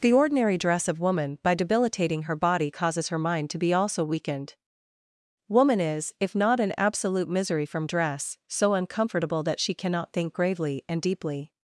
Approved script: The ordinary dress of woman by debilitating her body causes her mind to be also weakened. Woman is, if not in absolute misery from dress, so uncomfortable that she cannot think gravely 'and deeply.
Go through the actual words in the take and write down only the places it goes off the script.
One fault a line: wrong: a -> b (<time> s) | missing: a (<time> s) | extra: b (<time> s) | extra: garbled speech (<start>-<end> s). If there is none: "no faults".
no faults